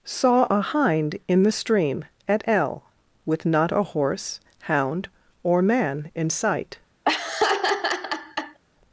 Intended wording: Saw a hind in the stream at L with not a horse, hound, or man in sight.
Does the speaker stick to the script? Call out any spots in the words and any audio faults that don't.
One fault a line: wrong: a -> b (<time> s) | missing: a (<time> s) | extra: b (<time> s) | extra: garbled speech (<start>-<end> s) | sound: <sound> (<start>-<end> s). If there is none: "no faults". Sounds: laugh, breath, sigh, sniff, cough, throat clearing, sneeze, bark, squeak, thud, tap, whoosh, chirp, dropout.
sound: laugh (7.0-8.6 s)